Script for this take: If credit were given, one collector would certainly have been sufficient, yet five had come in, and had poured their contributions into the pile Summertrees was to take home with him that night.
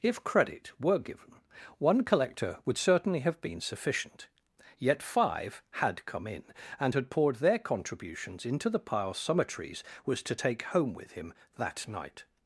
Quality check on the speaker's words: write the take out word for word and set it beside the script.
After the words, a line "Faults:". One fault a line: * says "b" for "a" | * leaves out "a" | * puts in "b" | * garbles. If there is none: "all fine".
If credit were given, one collector would certainly have been sufficient, yet five had come in, and had poured their contributions into the pile Summertrees was to take home with him that night.
Faults:
all fine